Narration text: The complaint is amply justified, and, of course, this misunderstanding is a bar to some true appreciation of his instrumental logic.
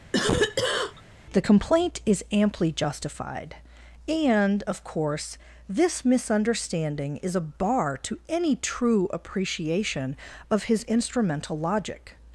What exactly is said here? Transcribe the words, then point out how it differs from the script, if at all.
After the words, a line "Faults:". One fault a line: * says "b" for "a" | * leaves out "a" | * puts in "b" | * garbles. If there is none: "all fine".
The complaint is amply justified, and, of course, this misunderstanding is a bar to any true appreciation of his instrumental logic.
Faults:
* says "any" for "some"